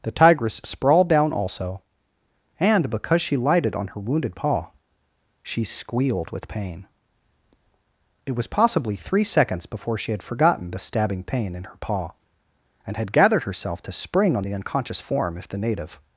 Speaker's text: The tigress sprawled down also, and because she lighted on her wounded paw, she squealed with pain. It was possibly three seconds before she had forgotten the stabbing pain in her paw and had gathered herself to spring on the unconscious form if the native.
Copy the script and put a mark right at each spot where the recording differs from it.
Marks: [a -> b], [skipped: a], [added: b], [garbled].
The tigress sprawled down also, and because she lighted on her wounded paw, she squealed with pain. It was possibly three seconds before she had forgotten the stabbing pain in her paw and had gathered herself to spring on the unconscious form if the native.